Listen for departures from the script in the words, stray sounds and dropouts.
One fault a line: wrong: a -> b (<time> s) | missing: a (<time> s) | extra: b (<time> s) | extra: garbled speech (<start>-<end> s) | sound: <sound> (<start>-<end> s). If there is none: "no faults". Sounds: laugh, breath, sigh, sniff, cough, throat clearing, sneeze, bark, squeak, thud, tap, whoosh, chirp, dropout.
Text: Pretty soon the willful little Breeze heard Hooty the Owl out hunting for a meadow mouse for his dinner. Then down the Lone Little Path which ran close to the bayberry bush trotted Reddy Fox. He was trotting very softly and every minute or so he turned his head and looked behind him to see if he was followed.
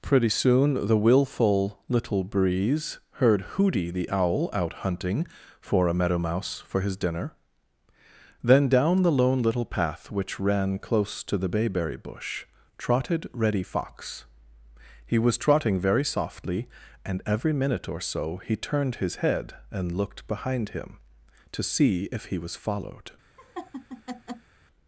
sound: laugh (23.4-24.5 s)